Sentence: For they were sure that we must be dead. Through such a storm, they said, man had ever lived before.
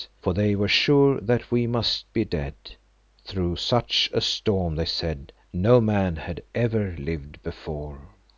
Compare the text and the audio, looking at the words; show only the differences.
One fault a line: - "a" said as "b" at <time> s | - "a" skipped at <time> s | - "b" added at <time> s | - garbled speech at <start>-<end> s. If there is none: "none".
- "no" added at 5.5 s